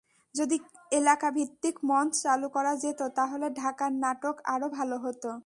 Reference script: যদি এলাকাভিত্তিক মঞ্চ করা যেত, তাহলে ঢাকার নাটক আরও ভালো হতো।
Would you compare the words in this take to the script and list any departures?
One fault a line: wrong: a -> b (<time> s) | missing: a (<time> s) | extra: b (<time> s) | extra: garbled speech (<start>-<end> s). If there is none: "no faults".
extra: চালু (2.2 s)